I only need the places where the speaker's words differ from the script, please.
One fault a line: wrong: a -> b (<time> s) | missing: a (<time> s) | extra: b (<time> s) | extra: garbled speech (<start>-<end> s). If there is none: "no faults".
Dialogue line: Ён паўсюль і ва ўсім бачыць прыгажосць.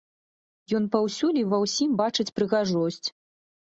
no faults